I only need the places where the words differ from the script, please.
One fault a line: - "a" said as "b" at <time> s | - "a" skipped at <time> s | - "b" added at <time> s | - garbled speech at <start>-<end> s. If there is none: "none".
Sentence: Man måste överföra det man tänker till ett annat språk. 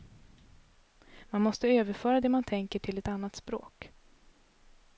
none